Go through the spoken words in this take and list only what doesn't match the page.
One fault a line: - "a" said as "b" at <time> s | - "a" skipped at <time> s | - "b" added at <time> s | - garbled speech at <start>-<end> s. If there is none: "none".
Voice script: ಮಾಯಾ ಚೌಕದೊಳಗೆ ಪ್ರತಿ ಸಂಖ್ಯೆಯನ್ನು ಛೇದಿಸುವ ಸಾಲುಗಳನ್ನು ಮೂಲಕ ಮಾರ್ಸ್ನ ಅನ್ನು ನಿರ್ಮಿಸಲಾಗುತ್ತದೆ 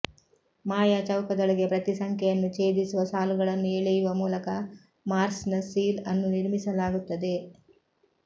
- "ಎಳೆಯುವ" added at 3.7 s
- "ಸೀಲ್" added at 5.7 s